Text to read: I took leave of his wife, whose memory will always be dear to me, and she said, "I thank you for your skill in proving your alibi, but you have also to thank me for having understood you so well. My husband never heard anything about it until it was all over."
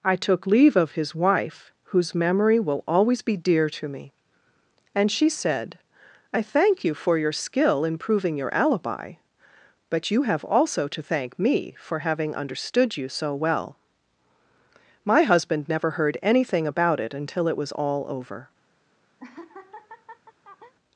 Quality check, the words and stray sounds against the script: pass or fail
fail